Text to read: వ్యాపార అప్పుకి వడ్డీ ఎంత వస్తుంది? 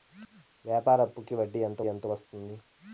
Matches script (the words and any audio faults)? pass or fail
fail